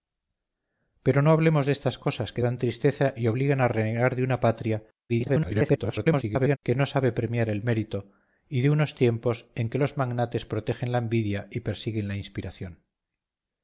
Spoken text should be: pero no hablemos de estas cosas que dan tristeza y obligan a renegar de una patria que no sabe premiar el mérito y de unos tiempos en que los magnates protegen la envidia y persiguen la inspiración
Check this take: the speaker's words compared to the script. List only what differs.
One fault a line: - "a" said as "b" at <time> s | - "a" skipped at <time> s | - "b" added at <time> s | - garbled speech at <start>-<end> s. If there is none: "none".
- garbled speech at 5.1-6.6 s